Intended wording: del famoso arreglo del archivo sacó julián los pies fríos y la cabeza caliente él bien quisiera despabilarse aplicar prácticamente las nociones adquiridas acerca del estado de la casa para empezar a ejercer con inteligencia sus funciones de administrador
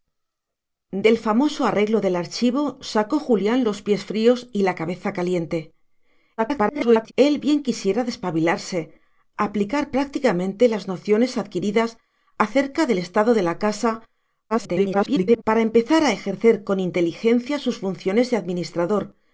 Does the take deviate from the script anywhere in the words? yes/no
yes